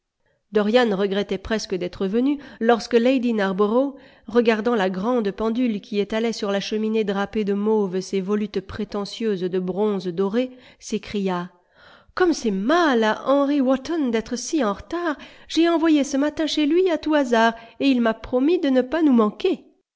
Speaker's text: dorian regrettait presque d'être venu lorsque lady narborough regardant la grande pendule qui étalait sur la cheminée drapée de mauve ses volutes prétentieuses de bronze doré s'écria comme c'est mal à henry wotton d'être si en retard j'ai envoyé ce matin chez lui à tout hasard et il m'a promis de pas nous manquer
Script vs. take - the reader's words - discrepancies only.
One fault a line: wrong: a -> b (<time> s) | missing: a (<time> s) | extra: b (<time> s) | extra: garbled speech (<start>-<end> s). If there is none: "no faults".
extra: ne (18.7 s)